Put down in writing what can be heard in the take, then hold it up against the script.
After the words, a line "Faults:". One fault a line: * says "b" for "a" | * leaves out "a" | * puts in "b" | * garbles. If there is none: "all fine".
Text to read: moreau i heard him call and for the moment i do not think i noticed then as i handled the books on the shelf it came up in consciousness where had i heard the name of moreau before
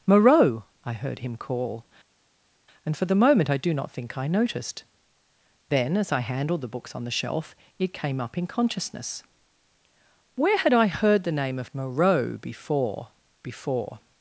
moreau i heard him call and for the moment i do not think i noticed then as i handled the books on the shelf it came up in consciousness where had i heard the name of moreau before before
Faults:
* puts in "before"